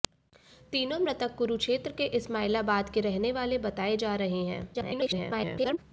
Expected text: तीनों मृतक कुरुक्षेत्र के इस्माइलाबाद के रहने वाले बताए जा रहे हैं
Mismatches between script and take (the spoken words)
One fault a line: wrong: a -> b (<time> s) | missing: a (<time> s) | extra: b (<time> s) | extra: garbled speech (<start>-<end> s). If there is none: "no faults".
extra: garbled speech (4.7-5.8 s)